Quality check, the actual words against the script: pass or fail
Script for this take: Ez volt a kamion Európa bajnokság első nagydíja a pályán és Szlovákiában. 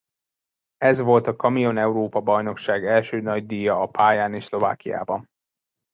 pass